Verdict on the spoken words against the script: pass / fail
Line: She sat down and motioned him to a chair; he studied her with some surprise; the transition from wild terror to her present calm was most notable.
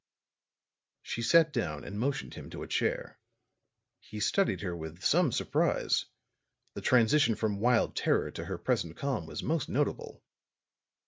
pass